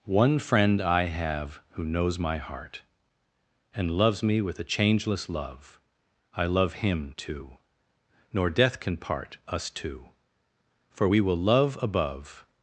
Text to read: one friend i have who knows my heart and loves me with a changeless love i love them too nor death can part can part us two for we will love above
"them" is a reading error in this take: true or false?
true